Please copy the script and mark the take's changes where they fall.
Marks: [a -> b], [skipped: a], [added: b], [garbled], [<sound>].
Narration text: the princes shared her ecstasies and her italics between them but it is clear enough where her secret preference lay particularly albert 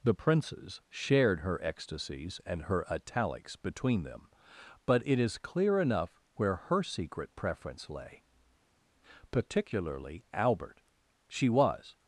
the princes shared her ecstasies and her italics between them but it is clear enough where her secret preference lay particularly albert [added: she was]